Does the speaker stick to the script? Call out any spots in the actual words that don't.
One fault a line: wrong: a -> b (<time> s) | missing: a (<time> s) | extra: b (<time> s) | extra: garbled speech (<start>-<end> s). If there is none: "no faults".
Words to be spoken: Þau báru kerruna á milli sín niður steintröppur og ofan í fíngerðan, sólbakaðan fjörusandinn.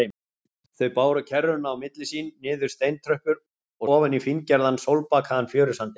no faults